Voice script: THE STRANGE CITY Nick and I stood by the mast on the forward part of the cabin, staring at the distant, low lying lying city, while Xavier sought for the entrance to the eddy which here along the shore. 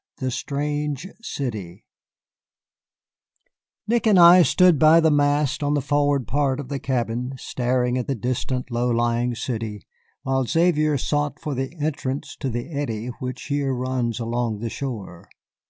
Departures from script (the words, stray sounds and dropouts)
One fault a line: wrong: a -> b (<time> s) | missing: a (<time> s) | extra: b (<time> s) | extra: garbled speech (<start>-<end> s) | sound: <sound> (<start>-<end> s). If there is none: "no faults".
missing: lying (9.3 s)
extra: runs (13.7 s)